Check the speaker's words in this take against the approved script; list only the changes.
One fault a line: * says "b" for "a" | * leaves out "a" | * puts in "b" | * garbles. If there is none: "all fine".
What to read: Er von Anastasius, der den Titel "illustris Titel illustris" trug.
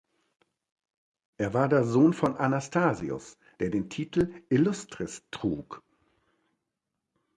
* puts in "war der Sohn"
* leaves out "Titel illustris"